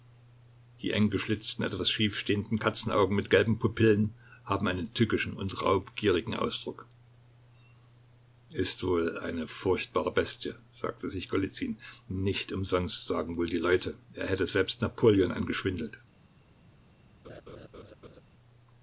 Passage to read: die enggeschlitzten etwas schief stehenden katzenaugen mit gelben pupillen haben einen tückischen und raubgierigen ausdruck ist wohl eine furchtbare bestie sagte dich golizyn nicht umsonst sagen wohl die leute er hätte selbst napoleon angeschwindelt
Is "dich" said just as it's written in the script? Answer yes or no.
no